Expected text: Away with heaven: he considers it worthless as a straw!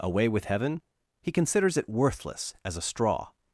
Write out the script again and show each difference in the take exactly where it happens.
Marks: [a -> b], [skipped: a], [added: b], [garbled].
Away with heaven: he considers it worthless as a straw!